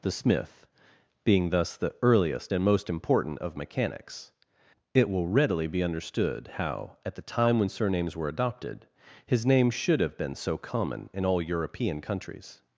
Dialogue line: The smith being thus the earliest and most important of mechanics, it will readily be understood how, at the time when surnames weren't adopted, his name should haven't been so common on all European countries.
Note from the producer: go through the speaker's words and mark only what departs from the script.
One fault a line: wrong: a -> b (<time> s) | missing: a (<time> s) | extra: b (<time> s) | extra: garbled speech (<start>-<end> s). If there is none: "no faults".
wrong: weren't -> were (8.1 s)
wrong: haven't -> have (10.0 s)
wrong: on -> in (11.1 s)